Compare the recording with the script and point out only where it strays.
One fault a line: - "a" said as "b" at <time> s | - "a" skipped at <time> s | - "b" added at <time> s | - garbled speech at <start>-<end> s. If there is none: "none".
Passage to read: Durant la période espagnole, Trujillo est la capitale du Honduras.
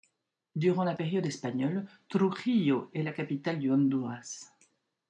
none